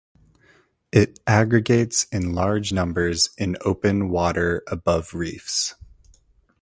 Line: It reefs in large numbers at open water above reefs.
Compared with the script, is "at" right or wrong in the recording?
wrong